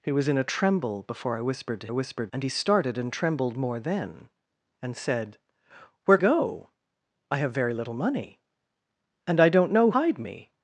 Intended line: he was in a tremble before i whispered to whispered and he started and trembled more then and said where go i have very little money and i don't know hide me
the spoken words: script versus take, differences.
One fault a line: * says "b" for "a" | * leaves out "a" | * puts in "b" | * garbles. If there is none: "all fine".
all fine